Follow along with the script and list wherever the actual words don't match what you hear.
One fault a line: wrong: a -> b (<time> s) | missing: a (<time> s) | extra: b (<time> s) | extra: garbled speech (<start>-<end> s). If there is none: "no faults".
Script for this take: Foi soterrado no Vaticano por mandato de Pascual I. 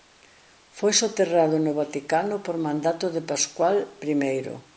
no faults